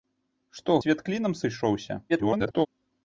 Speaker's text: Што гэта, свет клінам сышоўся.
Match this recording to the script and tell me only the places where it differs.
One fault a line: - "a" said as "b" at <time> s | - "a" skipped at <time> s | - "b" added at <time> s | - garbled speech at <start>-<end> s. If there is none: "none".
- "гэта" skipped at 0.8 s
- garbled speech at 2.1-2.7 s